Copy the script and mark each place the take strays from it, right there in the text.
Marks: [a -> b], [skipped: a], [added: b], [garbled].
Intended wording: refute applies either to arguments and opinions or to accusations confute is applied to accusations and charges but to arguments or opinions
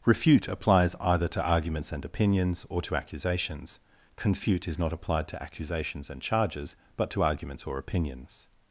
refute applies either to arguments and opinions or to accusations confute is [added: not] applied to accusations and charges but to arguments or opinions